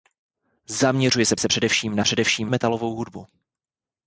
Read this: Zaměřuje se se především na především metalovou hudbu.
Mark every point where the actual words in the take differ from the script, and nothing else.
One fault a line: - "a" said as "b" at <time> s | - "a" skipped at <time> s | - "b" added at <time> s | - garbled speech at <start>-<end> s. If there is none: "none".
none